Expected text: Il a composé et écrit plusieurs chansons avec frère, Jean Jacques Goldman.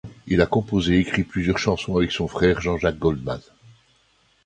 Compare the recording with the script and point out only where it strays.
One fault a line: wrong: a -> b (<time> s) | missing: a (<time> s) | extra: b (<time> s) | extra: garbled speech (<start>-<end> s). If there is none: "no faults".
extra: son (2.1 s)